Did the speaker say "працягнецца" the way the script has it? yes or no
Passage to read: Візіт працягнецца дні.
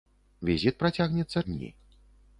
yes